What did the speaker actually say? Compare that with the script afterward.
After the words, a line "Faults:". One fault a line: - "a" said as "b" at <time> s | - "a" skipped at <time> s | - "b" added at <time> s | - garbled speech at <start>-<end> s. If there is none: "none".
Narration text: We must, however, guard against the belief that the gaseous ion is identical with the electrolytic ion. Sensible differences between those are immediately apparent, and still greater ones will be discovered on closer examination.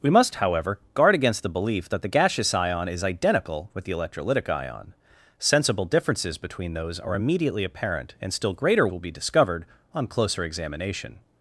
We must, however, guard against the belief that the gaseous ion is identical with the electrolytic ion. Sensible differences between those are immediately apparent, and still greater will be discovered on closer examination.
Faults:
- "ones" skipped at 8.9 s